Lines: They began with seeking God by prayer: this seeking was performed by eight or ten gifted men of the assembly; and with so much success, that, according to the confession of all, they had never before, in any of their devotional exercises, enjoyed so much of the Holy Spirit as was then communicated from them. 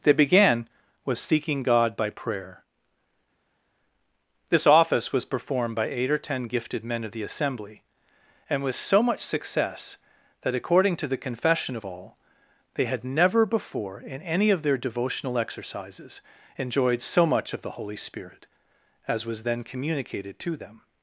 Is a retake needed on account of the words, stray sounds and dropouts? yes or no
yes